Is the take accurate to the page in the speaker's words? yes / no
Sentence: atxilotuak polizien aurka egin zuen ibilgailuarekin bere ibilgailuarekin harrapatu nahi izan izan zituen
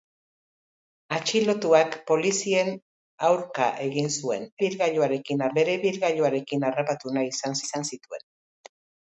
yes